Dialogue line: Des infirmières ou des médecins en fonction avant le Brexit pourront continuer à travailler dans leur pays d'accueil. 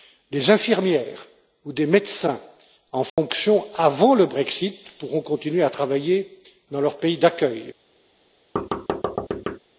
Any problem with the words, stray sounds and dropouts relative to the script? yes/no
yes